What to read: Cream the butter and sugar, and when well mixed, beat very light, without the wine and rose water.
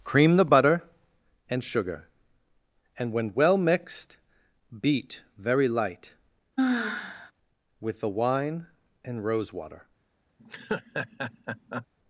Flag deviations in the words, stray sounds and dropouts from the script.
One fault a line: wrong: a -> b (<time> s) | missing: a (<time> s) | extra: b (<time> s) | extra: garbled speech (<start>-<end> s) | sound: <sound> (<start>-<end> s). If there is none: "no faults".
sound: sigh (6.6-7.3 s)
wrong: without -> with (7.8 s)
sound: laugh (10.4-11.9 s)